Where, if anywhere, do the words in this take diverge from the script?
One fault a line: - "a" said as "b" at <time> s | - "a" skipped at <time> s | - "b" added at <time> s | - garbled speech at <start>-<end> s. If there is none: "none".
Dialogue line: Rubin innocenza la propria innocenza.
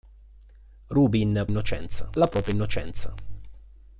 none